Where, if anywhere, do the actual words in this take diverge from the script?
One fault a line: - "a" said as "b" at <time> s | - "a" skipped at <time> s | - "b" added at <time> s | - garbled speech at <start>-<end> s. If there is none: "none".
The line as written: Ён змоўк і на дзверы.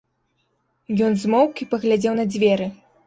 - "паглядзеў" added at 1.8 s